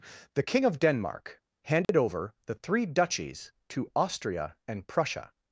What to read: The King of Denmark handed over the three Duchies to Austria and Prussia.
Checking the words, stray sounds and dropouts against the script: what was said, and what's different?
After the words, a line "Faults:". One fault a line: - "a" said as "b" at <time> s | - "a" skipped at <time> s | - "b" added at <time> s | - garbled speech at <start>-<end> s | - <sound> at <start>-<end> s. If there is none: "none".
The King of Denmark handed over the three Duchies to Austria and Prussia.
Faults:
- dropout at 1.8-1.9 s